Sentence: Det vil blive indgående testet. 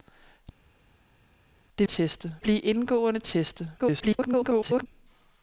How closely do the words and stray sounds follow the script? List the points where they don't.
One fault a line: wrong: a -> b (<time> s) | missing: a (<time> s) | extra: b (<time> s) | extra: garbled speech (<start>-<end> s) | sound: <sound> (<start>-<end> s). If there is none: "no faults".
wrong: vil -> testet (1.8 s)
extra: garbled speech (3.8-4.9 s)